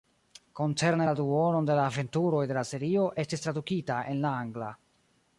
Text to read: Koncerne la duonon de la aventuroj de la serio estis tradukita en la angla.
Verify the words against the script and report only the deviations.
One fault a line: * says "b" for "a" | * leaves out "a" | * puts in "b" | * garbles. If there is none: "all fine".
all fine